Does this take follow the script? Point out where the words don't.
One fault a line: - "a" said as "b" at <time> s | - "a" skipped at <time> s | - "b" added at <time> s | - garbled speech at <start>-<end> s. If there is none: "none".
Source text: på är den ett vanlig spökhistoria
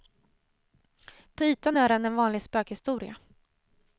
- "ytan" added at 1.4 s
- "ett" said as "en" at 2.1 s